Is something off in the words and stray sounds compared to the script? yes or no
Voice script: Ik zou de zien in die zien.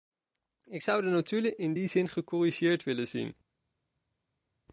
yes